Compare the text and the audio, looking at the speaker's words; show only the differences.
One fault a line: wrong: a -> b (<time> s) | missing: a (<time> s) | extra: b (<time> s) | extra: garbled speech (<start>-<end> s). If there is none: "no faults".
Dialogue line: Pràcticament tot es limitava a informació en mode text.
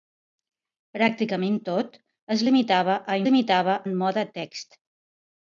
wrong: informació -> limitava (3.3 s)